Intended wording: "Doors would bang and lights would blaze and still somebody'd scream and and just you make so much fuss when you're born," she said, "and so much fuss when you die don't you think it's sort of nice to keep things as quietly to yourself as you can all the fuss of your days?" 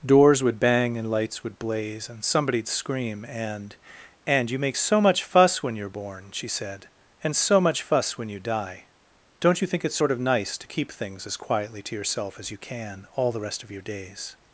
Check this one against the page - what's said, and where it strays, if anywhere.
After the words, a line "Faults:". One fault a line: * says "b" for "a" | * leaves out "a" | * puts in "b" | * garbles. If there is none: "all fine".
"Doors would bang and lights would blaze and somebody'd scream and and you make so much fuss when you're born," she said, "and so much fuss when you die don't you think it's sort of nice to keep things as quietly to yourself as you can all the rest of your days?"
Faults:
* leaves out "still"
* leaves out "just"
* says "rest" for "fuss"